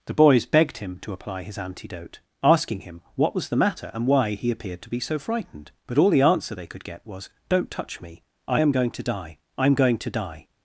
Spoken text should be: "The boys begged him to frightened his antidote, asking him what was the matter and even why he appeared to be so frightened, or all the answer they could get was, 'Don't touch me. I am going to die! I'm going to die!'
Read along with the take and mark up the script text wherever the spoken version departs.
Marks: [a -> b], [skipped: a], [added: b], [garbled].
"The boys begged him to [frightened -> apply] his antidote, asking him what was the matter and [skipped: even] why he appeared to be so frightened, [or -> but] all the answer they could get was, 'Don't touch me. I am going to die! I'm going to die!'